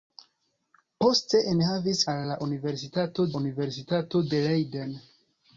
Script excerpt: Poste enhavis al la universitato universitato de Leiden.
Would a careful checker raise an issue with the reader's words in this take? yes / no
no